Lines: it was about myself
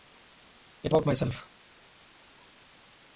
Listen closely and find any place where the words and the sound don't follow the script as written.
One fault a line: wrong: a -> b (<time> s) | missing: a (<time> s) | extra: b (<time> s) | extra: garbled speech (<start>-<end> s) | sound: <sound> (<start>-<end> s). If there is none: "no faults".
missing: was (0.9 s)